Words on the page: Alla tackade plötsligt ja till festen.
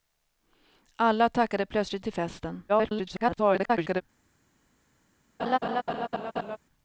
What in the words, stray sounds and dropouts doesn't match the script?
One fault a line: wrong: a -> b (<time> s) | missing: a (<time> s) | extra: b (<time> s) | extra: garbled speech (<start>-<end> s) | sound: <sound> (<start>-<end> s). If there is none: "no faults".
missing: ja (2.0 s)
extra: garbled speech (2.7-4.0 s)
sound: laugh (5.4-6.6 s)